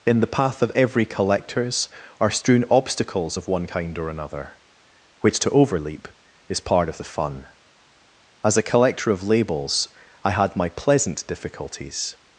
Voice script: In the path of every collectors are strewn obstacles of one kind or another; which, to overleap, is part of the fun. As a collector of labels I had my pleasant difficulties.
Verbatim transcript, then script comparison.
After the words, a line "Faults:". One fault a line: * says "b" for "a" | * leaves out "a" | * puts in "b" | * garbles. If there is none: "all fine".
In the path of every collectors are strewn obstacles of one kind or another; which, to overleap, is part of the fun. As a collector of labels I had my pleasant difficulties.
Faults:
all fine